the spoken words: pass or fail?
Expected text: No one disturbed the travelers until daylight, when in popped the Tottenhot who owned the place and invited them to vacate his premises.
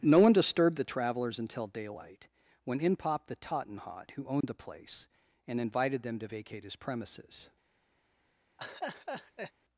pass